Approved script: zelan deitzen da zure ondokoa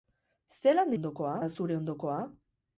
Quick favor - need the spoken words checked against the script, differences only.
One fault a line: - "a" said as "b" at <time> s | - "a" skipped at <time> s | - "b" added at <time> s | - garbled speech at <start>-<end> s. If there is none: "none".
- "deitzen" said as "ondokoa" at 1.0 s